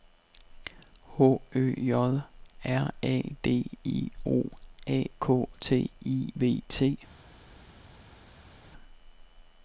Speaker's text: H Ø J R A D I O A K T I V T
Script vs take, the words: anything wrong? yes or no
no